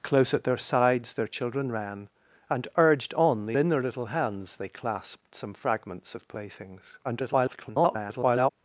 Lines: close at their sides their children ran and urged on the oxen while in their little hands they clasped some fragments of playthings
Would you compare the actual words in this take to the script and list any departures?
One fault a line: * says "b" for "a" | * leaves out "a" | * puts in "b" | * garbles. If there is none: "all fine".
* leaves out "oxen while"
* garbles